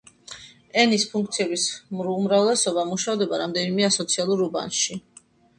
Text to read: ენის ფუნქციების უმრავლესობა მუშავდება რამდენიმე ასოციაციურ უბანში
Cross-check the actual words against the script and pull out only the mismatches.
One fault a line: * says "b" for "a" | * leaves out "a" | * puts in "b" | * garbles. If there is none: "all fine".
all fine